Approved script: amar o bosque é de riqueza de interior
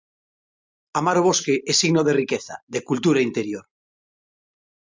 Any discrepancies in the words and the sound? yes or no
yes